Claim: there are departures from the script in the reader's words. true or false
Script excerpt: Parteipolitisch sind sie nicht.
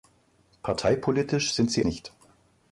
false